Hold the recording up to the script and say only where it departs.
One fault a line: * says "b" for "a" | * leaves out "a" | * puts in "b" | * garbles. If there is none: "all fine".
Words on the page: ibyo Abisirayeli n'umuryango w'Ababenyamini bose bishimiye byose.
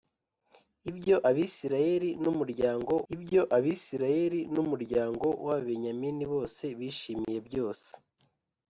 * puts in "ibyo Abisirayeli n'umuryango"